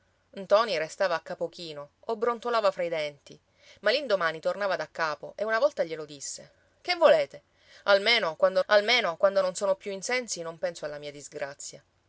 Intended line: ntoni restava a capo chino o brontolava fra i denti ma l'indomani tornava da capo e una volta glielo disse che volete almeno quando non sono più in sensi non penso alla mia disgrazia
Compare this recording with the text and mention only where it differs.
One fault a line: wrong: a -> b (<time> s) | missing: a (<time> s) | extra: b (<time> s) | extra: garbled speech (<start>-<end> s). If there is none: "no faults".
extra: almeno quando (8.7 s)